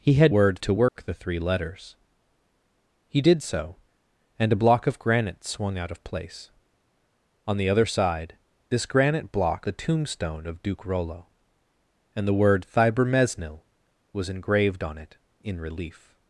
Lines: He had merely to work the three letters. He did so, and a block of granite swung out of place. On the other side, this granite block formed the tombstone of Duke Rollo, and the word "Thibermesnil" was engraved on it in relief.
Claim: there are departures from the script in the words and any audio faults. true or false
true